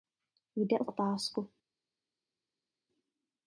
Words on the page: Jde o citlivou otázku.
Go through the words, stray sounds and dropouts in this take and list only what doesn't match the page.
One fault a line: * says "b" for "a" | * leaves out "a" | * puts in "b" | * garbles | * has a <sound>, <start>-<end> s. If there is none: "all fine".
* leaves out "citlivou"